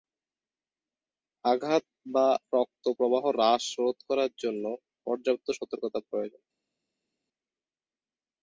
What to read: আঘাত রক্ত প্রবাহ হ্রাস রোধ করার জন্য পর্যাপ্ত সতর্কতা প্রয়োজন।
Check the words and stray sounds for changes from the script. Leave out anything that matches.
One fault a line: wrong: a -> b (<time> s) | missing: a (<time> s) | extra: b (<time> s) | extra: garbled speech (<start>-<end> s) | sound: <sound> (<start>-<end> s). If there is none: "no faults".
extra: বা (2.0 s)